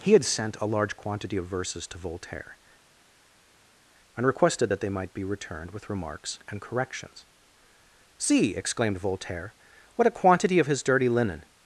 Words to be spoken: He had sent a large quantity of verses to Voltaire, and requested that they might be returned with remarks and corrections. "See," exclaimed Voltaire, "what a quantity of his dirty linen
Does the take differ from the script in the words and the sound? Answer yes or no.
no